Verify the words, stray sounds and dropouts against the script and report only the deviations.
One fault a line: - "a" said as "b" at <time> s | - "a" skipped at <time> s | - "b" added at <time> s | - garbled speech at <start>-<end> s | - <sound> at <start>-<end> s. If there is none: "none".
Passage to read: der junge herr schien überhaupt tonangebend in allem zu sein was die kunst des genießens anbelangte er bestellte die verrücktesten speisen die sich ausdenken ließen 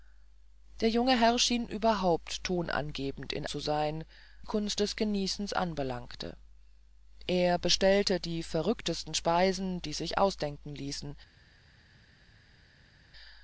- "allem" skipped at 3.5 s
- "was die" skipped at 4.0 s